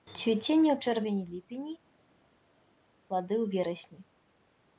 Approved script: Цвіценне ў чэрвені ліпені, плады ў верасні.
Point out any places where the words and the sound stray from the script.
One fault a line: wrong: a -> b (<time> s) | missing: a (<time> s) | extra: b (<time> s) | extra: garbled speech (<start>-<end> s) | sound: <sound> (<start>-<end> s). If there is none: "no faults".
no faults